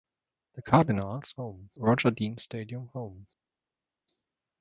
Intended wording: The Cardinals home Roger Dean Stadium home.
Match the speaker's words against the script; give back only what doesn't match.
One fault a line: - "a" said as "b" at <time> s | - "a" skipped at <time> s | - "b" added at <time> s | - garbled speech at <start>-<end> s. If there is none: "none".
none